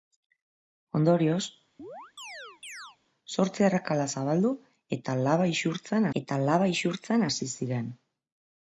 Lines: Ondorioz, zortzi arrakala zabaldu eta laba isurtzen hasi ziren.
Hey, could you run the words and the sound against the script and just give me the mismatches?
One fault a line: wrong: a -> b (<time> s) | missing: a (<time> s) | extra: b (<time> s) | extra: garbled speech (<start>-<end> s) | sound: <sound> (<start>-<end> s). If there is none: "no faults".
sound: chirp (1.8-3.0 s)
extra: eta laba isurtzen (6.2 s)